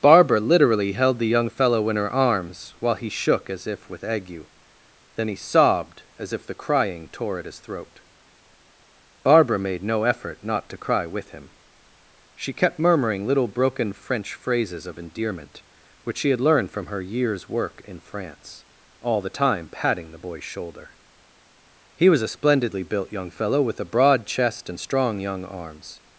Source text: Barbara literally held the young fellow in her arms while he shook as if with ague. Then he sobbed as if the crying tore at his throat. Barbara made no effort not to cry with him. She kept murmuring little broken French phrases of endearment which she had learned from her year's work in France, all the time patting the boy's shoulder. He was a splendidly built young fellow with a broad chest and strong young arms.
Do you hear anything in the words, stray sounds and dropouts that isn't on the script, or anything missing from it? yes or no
no